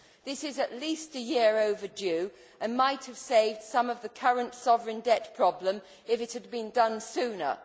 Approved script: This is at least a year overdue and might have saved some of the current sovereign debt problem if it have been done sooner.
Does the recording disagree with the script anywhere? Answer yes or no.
yes